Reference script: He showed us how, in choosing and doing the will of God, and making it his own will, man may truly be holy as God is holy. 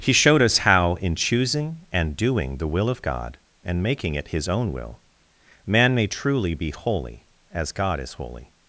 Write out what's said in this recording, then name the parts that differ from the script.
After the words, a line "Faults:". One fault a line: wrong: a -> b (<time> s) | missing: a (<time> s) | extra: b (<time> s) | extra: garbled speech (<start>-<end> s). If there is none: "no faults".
He showed us how, in choosing and doing the will of God, and making it his own will, man may truly be holy as God is holy.
Faults:
no faults